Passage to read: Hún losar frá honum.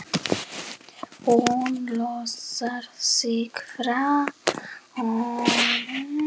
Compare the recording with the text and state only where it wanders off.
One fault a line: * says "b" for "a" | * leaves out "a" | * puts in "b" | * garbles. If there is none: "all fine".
* puts in "sig"